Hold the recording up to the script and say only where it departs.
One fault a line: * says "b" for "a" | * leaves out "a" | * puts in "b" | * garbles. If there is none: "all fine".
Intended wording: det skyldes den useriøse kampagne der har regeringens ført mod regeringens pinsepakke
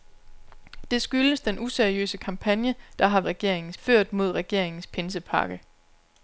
all fine